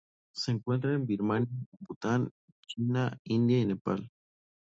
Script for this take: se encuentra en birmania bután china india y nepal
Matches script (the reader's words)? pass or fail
pass